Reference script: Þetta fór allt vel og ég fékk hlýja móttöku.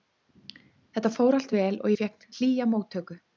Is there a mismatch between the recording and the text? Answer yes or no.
no